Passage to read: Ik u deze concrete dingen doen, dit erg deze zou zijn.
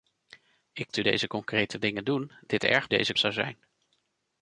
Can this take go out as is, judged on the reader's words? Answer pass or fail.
pass